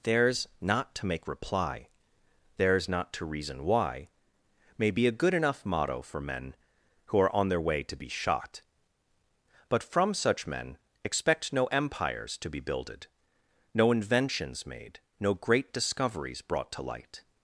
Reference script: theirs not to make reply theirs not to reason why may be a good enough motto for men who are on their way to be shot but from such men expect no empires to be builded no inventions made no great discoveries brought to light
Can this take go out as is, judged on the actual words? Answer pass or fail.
pass